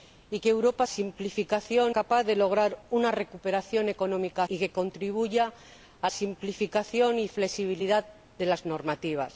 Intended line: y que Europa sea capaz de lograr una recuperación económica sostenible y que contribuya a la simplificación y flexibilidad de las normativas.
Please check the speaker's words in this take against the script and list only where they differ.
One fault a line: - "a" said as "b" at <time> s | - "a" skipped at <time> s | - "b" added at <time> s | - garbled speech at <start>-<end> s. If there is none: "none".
- "sea" said as "simplificación" at 0.8 s
- "sostenible" skipped at 4.5 s
- "la" skipped at 6.1 s